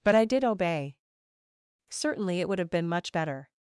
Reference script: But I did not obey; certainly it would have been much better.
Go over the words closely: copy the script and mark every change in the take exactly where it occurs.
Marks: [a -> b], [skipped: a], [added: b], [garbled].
But I did [skipped: not] obey; certainly it would have been much better.